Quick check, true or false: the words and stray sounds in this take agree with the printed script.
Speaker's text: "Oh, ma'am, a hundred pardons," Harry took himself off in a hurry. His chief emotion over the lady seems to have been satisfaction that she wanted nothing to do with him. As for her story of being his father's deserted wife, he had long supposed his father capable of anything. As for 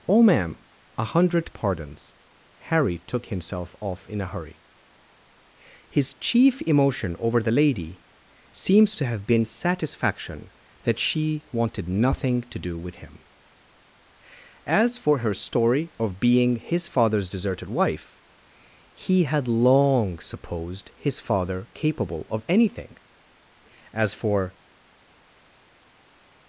true